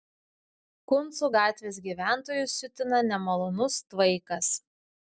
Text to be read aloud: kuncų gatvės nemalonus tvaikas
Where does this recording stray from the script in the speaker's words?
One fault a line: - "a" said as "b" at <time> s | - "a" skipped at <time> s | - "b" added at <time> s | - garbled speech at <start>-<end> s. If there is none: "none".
- "gyventojus siutina" added at 1.9 s